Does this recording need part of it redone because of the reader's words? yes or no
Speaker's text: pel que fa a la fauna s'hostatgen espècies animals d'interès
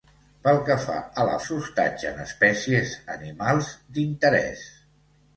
yes